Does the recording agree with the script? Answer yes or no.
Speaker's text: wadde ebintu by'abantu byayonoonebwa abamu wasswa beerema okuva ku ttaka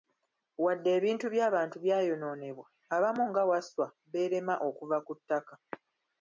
no